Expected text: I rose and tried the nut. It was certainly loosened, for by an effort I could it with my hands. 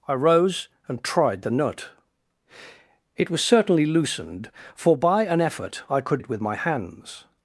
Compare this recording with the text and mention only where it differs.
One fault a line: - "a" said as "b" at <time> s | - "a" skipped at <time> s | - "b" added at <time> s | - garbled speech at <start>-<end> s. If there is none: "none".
none